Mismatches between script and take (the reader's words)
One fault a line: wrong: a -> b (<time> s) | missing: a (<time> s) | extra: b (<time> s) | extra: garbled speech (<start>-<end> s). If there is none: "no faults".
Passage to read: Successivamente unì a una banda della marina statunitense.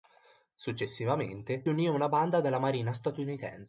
no faults